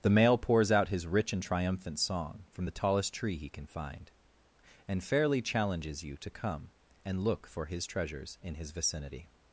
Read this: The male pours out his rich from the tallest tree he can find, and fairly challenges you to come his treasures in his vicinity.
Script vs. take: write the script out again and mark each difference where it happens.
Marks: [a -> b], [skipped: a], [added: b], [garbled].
The male pours out his rich [added: and triumphant song] from the tallest tree he can find, and fairly challenges you to come [added: and look for] his treasures in his vicinity.